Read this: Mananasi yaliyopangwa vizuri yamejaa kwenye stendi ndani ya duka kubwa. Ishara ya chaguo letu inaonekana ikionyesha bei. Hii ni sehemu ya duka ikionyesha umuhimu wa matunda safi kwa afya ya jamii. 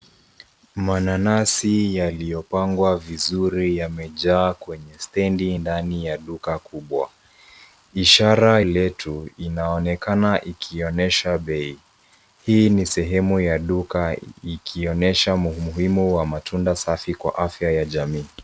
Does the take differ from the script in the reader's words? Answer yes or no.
yes